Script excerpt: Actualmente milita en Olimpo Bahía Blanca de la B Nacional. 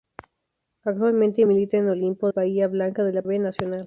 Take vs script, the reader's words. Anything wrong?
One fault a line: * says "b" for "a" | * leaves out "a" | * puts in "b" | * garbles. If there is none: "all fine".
all fine